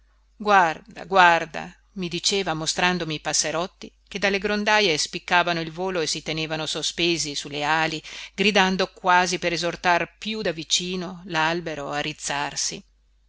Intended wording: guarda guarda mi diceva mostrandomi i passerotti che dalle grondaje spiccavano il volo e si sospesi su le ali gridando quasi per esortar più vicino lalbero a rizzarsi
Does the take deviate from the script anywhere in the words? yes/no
yes